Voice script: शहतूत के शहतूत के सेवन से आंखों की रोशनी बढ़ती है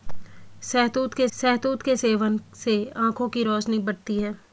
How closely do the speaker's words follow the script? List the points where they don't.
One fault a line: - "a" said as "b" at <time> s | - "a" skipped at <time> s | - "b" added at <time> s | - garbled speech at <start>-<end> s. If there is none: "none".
none